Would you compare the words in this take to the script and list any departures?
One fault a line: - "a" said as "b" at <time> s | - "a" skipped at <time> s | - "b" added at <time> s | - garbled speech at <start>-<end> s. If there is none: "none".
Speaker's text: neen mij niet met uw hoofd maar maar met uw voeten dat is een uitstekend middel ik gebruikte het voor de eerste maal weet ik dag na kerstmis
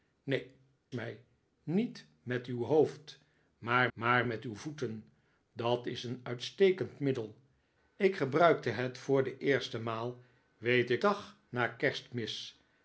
none